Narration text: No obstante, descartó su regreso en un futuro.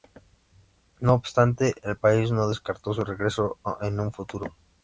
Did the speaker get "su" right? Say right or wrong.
right